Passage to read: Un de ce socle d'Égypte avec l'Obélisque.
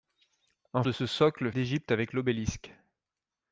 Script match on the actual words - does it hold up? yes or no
yes